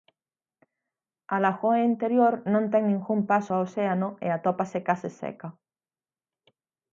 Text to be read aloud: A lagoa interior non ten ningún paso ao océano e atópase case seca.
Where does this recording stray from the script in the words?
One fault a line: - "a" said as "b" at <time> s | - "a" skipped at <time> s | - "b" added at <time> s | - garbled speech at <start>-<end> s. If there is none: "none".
none